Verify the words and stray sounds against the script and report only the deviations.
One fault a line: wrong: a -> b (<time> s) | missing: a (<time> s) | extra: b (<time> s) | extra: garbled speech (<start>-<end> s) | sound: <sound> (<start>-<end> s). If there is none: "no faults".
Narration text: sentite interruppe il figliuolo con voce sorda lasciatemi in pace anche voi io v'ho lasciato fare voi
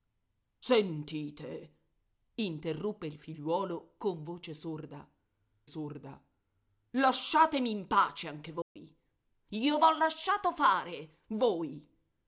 extra: sorda (5.7 s)
sound: dropout (8.6-8.8 s)